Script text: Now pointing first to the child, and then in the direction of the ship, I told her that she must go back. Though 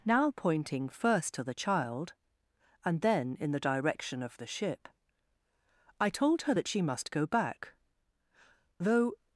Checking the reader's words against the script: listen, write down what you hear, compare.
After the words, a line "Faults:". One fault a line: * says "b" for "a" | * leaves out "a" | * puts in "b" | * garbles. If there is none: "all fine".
Now pointing first to the child, and then in the direction of the ship, I told her that she must go back. Though
Faults:
all fine